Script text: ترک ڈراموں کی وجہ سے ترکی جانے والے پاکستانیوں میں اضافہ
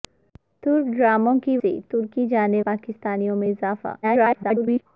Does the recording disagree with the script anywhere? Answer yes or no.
yes